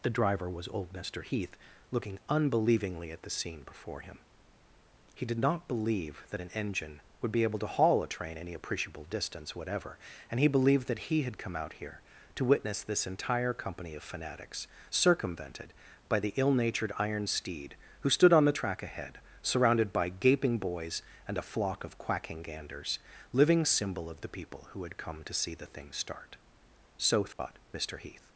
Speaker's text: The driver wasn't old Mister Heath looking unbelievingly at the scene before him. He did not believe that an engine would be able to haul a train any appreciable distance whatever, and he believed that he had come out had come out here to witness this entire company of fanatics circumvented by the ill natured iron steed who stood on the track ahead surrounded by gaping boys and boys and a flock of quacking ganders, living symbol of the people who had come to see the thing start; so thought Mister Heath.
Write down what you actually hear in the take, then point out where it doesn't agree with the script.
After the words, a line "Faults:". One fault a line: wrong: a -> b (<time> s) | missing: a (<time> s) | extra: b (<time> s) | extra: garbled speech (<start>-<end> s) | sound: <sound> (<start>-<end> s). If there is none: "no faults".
The driver was old Mister Heath looking unbelievingly at the scene before him. He did not believe that an engine would be able to haul a train any appreciable distance whatever, and he believed that he had come out here to witness this entire company of fanatics circumvented by the ill natured iron steed who stood on the track ahead surrounded by gaping boys and a flock of quacking ganders, living symbol of the people who had come to see the thing start; so thought Mister Heath.
Faults:
wrong: wasn't -> was (0.5 s)
missing: had come out (11.7 s)
missing: boys and (21.4 s)
sound: dropout (27.3-27.4 s)